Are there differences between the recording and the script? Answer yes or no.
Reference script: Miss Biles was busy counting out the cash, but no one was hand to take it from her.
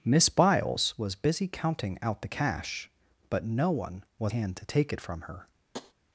no